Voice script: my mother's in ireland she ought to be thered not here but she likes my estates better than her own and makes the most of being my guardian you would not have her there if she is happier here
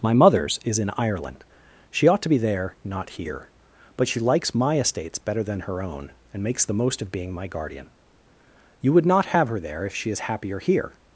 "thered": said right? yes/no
no